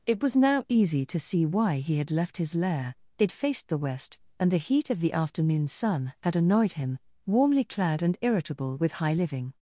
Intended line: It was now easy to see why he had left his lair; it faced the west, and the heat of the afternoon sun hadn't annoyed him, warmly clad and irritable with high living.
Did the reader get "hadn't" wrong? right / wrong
wrong